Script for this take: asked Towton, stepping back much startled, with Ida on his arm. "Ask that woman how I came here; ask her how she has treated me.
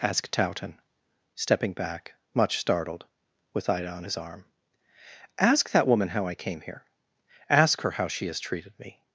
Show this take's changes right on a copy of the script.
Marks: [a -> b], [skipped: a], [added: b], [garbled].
asked Towton, stepping back much startled, with Ida on his arm. "Ask that woman how I came here; ask her how she has treated me.